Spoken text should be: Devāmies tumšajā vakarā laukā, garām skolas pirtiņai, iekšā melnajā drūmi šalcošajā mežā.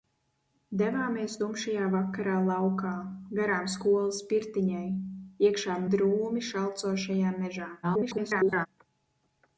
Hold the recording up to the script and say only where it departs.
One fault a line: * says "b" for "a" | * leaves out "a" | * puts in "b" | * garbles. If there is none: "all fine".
* leaves out "melnajā"
* garbles